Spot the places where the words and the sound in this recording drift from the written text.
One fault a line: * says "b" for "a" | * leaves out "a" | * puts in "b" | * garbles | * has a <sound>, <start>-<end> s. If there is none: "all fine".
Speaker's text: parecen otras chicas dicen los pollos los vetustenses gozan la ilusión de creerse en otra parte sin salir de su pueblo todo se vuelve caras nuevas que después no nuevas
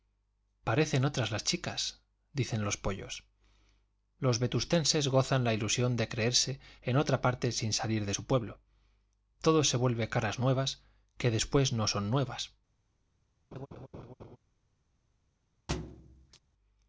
* puts in "las"
* puts in "son"
* has a laugh, 13.5-14.4 s
* has a thud, 15.7-16.4 s